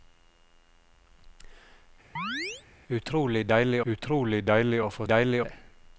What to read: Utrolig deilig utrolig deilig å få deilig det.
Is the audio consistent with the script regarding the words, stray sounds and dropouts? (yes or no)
no